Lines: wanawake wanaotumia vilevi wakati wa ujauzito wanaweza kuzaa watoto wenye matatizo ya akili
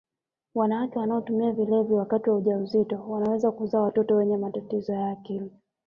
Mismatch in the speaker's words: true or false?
false